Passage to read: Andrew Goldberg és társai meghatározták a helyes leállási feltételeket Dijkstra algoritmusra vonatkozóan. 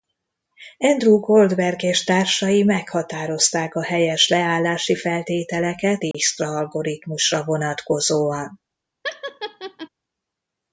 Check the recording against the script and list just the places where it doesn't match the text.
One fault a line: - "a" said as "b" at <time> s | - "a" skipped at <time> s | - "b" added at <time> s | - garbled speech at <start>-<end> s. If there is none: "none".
none